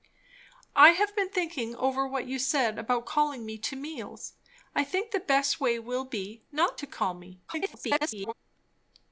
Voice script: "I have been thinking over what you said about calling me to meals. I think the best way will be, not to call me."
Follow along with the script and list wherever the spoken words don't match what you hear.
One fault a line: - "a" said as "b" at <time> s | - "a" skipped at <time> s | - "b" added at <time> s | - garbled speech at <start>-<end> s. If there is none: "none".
- garbled speech at 7.5-8.3 s